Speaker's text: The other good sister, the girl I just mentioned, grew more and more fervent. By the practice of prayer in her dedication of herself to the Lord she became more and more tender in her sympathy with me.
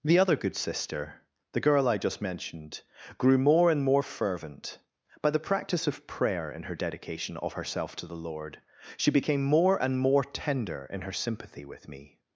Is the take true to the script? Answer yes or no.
yes